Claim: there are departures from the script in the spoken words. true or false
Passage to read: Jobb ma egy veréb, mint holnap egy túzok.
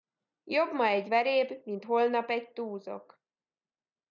false